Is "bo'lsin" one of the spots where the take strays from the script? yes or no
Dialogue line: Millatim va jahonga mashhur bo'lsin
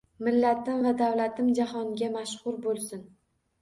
no